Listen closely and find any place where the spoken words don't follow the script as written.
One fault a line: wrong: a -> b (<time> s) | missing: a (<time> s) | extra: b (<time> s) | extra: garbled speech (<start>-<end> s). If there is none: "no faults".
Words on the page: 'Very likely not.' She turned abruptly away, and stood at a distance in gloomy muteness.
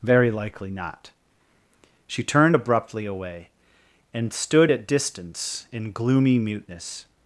missing: a (4.9 s)